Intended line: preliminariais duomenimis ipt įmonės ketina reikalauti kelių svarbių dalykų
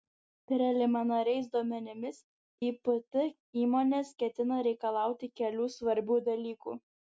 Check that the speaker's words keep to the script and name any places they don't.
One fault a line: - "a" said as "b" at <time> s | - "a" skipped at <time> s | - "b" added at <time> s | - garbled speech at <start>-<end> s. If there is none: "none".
none